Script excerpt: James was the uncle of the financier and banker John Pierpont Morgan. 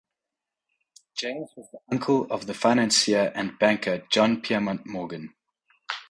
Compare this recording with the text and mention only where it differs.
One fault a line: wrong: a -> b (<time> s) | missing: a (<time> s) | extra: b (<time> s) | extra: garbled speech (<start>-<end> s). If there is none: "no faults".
no faults